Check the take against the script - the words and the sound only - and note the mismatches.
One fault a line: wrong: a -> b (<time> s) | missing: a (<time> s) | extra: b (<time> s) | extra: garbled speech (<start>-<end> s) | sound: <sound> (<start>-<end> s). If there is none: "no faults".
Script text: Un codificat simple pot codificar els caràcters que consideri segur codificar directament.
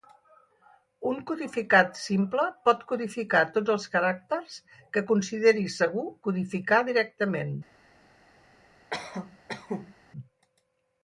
extra: tots (3.6 s)
sound: cough (8.9-10.0 s)